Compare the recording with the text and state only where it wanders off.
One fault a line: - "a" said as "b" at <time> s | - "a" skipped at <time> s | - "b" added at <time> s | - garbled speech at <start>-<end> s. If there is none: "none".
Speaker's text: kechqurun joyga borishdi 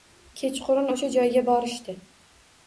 - "o`sha" added at 0.9 s